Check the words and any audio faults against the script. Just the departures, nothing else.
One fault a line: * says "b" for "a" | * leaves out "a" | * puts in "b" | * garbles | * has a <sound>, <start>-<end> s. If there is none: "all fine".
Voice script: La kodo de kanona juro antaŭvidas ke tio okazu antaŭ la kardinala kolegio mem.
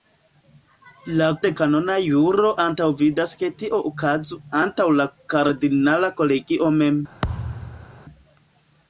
* leaves out "kodo"
* has a thud, 7.2-8.0 s